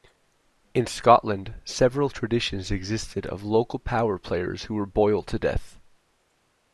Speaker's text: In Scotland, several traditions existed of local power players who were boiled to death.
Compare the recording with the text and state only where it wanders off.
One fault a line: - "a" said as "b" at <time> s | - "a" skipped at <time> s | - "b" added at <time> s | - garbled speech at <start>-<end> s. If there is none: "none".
none